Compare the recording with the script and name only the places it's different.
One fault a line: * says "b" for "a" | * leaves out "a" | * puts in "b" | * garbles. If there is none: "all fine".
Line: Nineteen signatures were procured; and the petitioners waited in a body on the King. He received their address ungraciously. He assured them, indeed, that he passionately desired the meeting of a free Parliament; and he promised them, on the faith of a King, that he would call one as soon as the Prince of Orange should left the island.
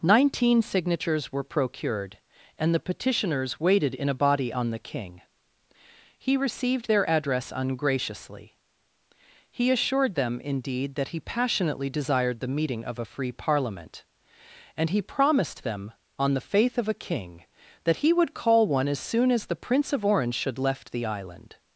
all fine